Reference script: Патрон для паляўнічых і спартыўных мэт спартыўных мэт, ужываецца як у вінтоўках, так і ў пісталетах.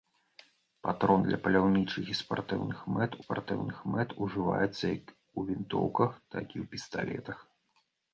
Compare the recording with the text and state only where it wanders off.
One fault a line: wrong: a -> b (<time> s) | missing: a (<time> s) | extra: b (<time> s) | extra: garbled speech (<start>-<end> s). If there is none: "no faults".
no faults